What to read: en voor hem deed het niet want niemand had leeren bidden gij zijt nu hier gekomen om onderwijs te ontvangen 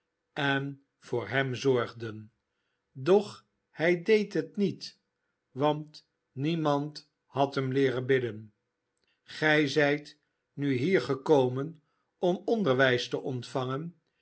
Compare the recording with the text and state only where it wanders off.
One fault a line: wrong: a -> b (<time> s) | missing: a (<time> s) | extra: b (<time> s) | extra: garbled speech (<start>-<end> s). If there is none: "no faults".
extra: zorgden doch hij (1.6 s)
extra: hem (7.5 s)